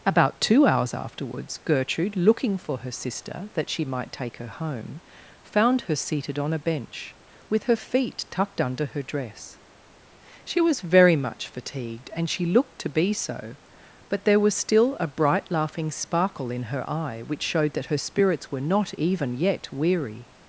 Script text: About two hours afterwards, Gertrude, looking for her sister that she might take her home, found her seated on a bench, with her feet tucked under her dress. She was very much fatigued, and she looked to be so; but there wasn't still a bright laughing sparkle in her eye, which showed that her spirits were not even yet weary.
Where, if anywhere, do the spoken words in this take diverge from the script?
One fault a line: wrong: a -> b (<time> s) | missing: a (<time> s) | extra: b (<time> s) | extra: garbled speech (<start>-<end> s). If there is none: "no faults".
wrong: wasn't -> was (14.4 s)